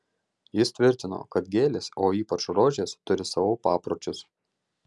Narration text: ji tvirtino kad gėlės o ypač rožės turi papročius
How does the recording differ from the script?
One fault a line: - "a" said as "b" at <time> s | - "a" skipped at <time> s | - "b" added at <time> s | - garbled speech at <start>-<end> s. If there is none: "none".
- "ji" said as "jis" at 0.6 s
- "savo" added at 3.4 s